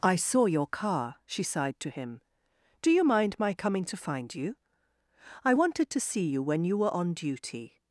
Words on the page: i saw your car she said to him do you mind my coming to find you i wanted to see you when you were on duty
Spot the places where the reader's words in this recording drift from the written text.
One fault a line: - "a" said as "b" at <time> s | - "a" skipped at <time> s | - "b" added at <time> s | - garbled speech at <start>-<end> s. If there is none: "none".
- "said" said as "sighed" at 1.4 s